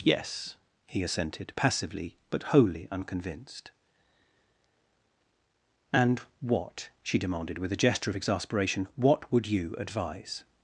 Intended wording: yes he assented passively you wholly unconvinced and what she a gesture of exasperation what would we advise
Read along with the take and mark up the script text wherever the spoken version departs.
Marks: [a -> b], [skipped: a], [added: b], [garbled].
yes he assented passively [you -> but] wholly unconvinced and what she [added: demanded with] a gesture of exasperation what would [we -> you] advise